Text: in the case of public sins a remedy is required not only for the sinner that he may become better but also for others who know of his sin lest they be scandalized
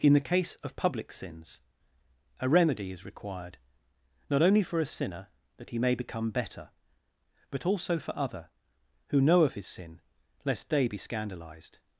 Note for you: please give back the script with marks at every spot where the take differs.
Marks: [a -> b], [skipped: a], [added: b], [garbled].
in the case of public sins a remedy is required not only for [the -> a] sinner that he may become better but also for [others -> other] who know of his sin lest they be scandalized